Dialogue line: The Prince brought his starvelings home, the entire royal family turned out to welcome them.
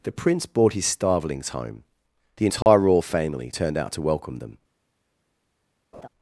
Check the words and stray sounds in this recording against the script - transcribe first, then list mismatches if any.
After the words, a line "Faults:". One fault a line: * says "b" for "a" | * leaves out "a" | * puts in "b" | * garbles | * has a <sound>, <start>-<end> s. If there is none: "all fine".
The Prince brought his starvelings home, the entire royal family turned out to welcome them.
Faults:
* has a dropout, 2.6-2.7 s
* has a laugh, 5.9-6.1 s